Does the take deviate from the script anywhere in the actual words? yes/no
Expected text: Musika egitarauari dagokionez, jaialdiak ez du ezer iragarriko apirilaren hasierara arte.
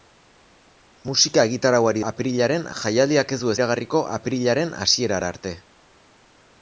yes